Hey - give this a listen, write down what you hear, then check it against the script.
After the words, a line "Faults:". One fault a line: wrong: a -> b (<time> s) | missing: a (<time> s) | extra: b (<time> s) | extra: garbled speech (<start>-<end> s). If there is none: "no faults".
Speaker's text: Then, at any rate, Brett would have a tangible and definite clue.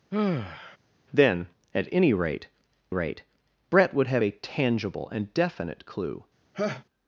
Then, at any rate rate, Brett would have a tangible and definite clue.
Faults:
extra: rate (2.9 s)